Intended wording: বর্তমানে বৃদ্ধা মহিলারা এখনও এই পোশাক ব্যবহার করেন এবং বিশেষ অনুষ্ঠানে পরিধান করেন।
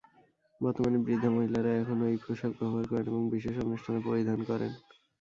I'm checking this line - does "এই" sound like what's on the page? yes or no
yes